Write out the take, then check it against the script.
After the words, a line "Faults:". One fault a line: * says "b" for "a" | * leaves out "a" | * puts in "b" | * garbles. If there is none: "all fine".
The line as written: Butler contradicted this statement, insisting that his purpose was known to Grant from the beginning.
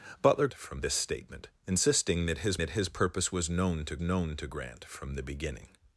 Butler from this statement, insisting that his that his purpose was known to known to Grant from the beginning.
Faults:
* says "from" for "contradicted"
* puts in "that his"
* puts in "known to"